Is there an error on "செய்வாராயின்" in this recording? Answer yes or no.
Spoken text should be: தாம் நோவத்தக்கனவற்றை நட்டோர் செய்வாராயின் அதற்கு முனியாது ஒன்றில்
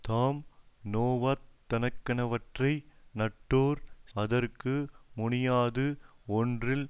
yes